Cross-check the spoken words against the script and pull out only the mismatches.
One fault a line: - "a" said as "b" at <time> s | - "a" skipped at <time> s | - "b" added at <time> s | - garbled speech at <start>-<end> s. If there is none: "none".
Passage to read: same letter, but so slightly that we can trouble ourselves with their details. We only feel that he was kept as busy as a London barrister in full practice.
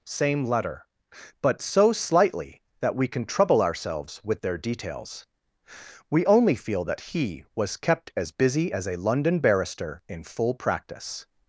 none